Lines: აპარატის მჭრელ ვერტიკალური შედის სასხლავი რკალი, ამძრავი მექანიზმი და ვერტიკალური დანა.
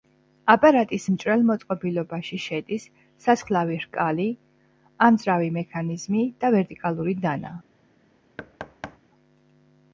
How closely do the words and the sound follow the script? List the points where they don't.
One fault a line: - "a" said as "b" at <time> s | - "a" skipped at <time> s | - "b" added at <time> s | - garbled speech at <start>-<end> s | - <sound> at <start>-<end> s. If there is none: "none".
- "ვერტიკალური" said as "მოწყობილობაში" at 1.5 s
- thud at 8.4-9.0 s